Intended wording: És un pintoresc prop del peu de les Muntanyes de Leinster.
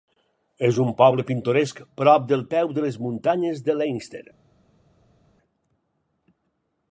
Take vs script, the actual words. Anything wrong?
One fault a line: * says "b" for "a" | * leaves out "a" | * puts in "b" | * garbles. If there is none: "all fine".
* puts in "poble"